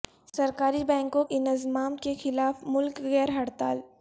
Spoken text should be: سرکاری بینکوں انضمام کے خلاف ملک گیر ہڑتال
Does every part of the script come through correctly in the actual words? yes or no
yes